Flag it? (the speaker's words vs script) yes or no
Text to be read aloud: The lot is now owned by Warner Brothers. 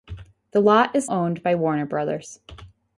yes